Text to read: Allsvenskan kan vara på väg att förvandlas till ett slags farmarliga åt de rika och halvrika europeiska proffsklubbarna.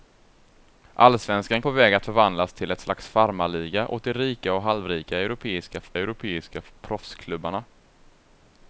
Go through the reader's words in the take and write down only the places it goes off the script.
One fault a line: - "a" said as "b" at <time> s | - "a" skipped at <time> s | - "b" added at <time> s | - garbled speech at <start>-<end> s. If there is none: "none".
- "kan vara" skipped at 1.6 s
- "europeiska" added at 6.0 s